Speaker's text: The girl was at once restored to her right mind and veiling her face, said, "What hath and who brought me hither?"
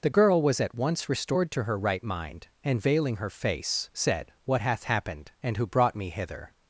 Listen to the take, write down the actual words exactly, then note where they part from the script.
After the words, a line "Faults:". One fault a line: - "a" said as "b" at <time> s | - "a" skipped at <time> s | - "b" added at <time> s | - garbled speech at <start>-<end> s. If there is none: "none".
The girl was at once restored to her right mind and veiling her face, said, "What hath happened and who brought me hither?"
Faults:
- "happened" added at 4.8 s